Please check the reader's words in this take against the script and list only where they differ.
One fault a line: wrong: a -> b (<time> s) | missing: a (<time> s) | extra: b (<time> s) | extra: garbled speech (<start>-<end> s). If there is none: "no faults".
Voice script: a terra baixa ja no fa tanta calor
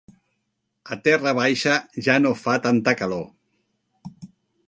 no faults